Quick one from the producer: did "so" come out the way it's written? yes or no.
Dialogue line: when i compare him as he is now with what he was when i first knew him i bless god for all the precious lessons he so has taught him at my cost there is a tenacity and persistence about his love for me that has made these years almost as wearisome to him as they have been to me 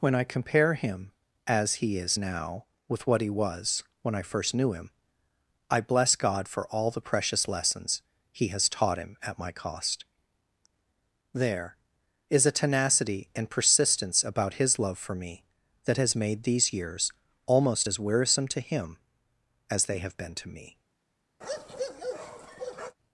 no